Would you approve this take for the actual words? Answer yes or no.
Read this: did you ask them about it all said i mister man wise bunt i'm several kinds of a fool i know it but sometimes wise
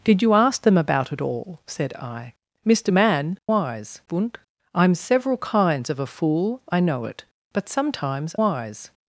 yes